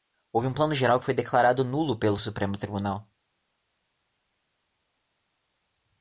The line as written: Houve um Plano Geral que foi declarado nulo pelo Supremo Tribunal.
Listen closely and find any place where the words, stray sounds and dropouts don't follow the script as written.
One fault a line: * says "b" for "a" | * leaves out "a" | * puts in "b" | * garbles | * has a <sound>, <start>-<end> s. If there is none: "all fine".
all fine